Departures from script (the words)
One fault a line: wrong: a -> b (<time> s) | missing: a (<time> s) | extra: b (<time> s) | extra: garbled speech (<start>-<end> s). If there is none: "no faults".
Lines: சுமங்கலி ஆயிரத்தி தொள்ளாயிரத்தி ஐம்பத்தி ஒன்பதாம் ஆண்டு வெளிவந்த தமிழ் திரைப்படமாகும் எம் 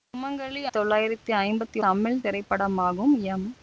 missing: ஆயிரத்தி (0.6 s)
missing: ஒன்பதாம் ஆண்டு வெளிவந்த (1.8 s)